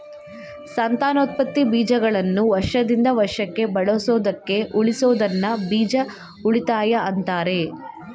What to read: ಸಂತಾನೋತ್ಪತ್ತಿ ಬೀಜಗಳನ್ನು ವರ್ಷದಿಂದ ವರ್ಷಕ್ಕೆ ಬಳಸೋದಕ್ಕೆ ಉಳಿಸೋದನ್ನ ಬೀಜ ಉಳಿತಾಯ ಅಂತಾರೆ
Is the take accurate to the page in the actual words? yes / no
yes